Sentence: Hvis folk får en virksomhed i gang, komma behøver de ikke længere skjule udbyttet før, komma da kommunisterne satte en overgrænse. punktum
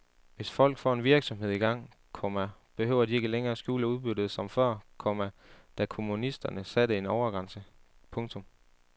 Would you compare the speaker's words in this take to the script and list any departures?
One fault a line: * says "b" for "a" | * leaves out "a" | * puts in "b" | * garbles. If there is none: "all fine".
* puts in "som"